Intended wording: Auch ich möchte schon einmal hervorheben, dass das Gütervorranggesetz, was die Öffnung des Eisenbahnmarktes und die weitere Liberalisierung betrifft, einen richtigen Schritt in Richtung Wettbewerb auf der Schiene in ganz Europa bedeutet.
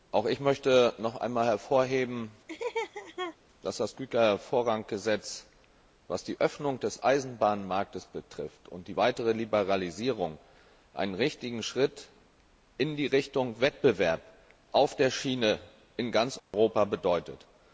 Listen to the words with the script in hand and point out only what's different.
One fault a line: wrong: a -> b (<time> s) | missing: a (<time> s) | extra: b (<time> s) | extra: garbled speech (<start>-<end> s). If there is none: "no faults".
wrong: schon -> noch (1.0 s)